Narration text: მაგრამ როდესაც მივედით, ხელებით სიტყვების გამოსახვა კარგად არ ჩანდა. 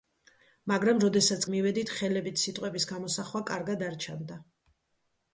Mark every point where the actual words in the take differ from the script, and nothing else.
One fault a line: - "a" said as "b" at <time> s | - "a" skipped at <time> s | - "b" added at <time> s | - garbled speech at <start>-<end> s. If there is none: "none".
none